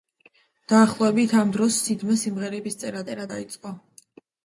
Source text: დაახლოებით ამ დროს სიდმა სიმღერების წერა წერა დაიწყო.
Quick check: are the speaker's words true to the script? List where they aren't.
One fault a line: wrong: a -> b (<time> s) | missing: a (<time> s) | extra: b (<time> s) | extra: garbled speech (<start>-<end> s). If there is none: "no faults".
no faults